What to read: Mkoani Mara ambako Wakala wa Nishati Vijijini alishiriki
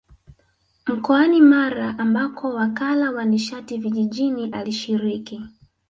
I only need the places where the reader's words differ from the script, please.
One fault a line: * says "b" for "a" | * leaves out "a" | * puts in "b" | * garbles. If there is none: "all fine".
all fine